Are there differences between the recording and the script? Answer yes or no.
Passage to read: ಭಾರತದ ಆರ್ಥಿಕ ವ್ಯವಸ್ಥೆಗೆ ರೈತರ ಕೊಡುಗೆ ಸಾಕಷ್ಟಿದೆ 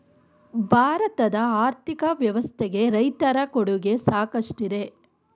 no